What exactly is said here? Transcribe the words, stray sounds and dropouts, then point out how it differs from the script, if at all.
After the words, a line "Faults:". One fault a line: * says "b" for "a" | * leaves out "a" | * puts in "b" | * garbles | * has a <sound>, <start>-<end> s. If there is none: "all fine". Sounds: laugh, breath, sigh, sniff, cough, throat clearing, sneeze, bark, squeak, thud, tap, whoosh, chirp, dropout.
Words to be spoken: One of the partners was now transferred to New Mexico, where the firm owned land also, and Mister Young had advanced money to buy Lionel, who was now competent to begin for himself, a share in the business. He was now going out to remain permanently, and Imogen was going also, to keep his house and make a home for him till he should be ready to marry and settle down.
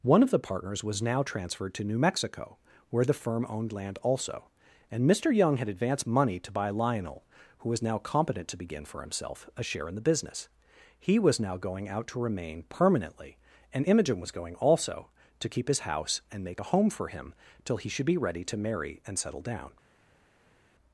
One of the partners was now transferred to New Mexico, where the firm owned land also, and Mister Young had advanced money to buy Lionel, who was now competent to begin for himself, a share in the business. He was now going out to remain permanently, and Imogen was going also, to keep his house and make a home for him till he should be ready to marry and settle down.
Faults:
all fine